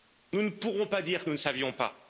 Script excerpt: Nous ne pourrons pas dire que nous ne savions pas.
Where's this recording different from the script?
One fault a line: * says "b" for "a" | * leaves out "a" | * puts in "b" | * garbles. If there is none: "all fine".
all fine